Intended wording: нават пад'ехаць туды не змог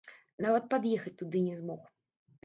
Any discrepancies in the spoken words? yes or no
no